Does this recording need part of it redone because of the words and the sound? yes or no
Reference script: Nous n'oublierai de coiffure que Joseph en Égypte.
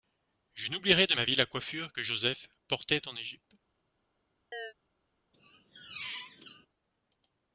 yes